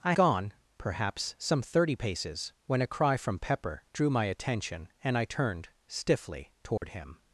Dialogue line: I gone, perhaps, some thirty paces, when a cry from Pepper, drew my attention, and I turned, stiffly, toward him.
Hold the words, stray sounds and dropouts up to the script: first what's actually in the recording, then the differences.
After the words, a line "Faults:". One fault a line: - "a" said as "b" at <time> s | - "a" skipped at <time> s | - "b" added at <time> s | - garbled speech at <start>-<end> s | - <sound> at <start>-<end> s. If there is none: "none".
I gone, perhaps, some thirty paces, when a cry from Pepper, drew my attention, and I turned, stiffly, toward him.
Faults:
- dropout at 6.8-6.8 s